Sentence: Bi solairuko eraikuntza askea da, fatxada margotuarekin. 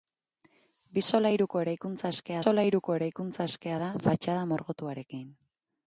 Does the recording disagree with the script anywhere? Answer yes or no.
yes